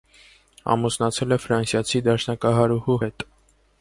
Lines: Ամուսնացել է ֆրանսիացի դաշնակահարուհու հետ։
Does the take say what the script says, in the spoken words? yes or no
yes